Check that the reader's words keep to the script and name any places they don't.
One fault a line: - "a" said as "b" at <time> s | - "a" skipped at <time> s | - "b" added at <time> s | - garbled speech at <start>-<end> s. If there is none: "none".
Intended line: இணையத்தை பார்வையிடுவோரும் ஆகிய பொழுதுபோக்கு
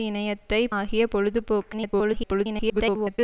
- "பார்வையிடுவோரும்" skipped at 0.6 s
- garbled speech at 1.7-3.2 s